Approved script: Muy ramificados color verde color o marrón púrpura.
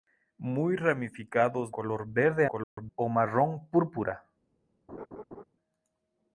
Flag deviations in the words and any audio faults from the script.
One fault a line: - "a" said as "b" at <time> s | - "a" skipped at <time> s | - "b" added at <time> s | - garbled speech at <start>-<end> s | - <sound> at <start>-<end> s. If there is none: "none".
- dropout at 2.6-2.8 s
- laugh at 4.9-5.4 s